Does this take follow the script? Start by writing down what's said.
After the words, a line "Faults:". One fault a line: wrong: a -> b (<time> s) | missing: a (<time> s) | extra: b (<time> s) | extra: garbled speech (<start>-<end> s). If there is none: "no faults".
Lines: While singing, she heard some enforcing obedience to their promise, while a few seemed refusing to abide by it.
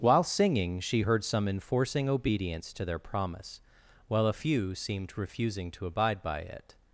While singing, she heard some enforcing obedience to their promise, while a few seemed refusing to abide by it.
Faults:
no faults